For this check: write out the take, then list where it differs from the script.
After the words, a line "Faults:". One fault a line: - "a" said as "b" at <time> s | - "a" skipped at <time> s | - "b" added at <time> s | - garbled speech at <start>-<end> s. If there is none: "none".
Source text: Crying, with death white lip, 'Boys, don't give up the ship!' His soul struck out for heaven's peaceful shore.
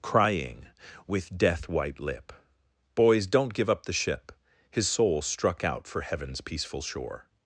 Crying, with death white lip, 'Boys, don't give up the ship!' His soul struck out for heaven's peaceful shore.
Faults:
none